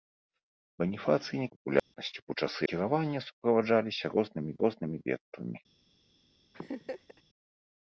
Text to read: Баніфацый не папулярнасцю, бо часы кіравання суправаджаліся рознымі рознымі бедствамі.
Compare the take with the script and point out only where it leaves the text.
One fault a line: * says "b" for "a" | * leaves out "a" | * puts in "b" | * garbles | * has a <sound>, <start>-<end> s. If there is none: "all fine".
* has a dropout, 1.8-1.9 s
* has a laugh, 6.5-7.2 s